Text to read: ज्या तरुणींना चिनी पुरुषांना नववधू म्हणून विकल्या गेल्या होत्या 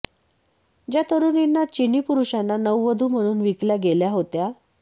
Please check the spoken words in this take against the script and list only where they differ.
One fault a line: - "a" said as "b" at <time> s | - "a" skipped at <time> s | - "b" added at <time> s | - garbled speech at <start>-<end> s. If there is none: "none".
none